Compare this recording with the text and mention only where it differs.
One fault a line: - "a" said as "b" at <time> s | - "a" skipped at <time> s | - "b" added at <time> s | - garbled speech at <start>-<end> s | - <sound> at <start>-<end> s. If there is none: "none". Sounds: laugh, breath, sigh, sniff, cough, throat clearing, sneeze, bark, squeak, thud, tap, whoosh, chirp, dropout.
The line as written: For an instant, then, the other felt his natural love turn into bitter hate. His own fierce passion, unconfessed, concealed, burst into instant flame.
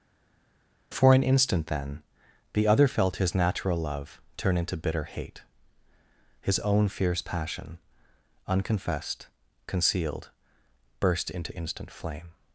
none